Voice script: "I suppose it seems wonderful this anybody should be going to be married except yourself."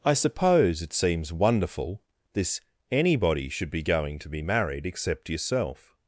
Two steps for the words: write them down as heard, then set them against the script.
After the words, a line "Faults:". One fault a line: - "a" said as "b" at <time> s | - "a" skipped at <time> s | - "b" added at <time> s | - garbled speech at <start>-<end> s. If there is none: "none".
"I suppose it seems wonderful this anybody should be going to be married except yourself."
Faults:
none